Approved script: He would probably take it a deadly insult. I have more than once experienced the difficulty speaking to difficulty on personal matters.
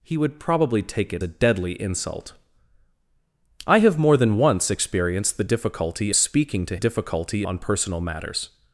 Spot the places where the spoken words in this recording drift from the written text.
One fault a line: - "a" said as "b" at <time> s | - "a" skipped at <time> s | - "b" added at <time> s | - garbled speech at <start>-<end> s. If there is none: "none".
none